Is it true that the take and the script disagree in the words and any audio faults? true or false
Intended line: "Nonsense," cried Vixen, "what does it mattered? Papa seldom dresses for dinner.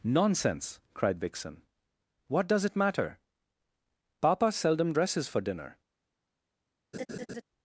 true